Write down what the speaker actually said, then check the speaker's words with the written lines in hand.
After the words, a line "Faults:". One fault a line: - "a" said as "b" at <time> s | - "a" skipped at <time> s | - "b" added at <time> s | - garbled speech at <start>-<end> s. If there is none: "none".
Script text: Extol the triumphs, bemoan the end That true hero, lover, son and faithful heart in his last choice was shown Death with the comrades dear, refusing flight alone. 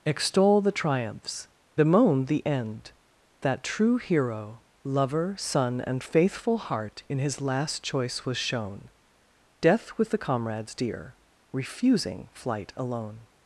Extol the triumphs, bemoan the end That true hero, lover, son and faithful heart in his last choice was shown Death with the comrades dear, refusing flight alone.
Faults:
none